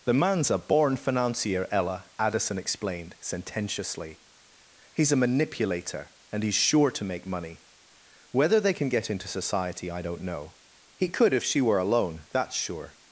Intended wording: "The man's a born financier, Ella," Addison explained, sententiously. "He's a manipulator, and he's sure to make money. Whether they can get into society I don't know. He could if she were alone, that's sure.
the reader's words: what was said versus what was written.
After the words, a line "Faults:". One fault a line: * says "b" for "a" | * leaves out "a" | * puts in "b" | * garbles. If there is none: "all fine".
"The man's a born financier, Ella," Addison explained, sententiously. "He's a manipulator, and he's sure to make money. Whether they can get into society I don't know. He could if she were alone, that's sure.
Faults:
all fine